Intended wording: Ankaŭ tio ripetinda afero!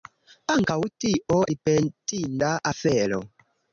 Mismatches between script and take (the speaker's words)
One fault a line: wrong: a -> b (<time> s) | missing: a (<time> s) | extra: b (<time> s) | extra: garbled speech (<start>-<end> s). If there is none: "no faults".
no faults